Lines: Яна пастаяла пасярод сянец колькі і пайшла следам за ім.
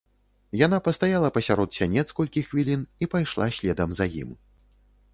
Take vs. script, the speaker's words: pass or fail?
fail